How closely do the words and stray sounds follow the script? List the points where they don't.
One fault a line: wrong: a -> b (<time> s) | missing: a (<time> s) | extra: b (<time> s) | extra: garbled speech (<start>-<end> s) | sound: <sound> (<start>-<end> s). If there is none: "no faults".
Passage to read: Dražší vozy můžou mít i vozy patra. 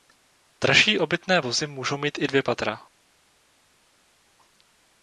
extra: obytné (1.0 s)
wrong: vozy -> dvě (2.2 s)